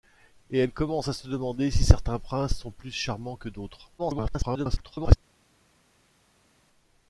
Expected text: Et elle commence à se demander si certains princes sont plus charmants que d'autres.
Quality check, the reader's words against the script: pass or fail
fail